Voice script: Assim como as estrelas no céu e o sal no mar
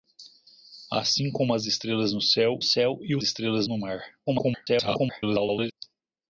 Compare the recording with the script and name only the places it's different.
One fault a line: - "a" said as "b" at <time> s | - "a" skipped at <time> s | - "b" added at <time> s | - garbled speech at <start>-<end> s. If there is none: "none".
- "céu" added at 2.6 s
- "sal" said as "estrelas" at 3.2 s
- garbled speech at 4.3-5.7 s